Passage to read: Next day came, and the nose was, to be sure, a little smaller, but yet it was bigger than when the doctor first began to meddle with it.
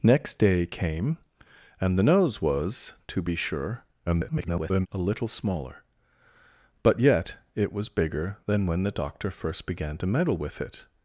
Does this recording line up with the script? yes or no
no